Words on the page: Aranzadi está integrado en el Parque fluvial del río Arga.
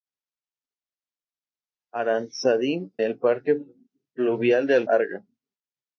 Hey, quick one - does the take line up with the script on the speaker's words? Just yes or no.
no